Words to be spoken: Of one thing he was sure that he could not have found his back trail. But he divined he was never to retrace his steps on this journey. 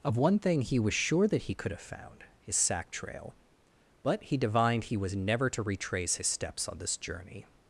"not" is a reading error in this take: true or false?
true